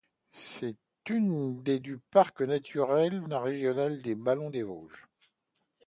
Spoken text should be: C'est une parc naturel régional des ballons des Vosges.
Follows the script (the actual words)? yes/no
no